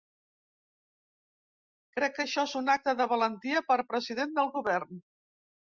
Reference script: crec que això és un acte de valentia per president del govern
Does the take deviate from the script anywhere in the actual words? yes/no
no